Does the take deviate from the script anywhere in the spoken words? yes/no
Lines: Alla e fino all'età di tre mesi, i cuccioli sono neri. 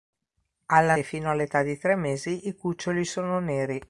no